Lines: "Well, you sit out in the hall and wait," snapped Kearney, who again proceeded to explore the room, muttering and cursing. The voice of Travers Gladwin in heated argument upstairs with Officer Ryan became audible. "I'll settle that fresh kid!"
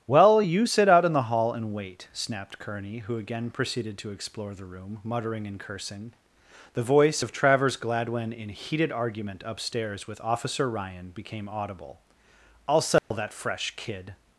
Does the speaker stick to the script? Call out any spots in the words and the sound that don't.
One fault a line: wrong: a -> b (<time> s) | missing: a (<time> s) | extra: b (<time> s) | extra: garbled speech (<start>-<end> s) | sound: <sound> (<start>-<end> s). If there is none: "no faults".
sound: dropout (13.0-13.1 s)